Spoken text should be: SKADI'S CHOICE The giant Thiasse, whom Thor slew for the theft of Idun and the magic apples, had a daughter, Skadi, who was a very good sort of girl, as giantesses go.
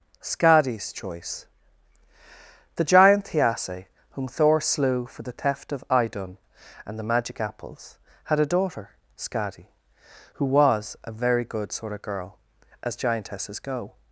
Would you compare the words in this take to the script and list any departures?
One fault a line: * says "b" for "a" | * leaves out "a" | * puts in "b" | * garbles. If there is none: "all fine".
all fine